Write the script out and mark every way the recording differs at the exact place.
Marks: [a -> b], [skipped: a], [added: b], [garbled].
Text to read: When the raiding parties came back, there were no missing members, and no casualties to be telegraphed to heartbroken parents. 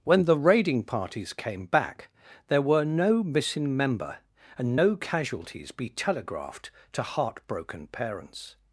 When the raiding parties came back, there were no missing [members, -> member] and no casualties [skipped: to] be telegraphed to heartbroken parents.